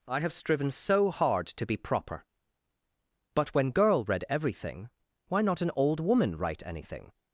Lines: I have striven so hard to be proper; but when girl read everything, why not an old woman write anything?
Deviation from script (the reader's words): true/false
false